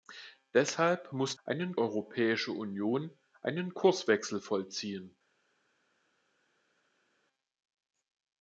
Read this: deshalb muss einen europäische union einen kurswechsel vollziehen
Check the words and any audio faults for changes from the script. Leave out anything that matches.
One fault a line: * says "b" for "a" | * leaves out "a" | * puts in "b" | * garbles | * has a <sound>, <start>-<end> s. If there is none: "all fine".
all fine